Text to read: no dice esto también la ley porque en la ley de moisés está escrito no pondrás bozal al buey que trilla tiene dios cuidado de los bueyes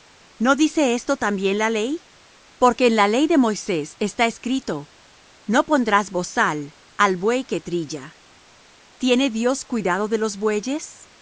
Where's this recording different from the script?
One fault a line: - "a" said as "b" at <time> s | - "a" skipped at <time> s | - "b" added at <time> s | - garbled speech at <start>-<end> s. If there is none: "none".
none